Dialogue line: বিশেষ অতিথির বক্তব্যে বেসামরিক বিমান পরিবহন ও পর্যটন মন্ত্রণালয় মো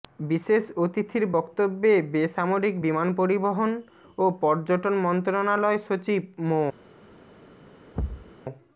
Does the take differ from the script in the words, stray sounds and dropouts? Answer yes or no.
yes